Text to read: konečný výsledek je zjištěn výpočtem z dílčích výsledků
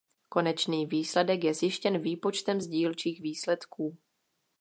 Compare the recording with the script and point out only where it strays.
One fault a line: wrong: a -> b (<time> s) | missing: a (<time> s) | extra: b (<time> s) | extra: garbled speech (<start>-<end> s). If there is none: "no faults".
no faults